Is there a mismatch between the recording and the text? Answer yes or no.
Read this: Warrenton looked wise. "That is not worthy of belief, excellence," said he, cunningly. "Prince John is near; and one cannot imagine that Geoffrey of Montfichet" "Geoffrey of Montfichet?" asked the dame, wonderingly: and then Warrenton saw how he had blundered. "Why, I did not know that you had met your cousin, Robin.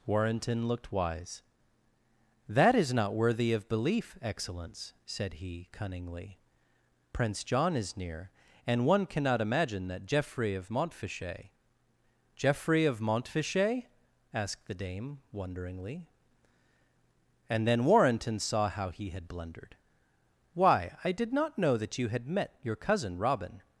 no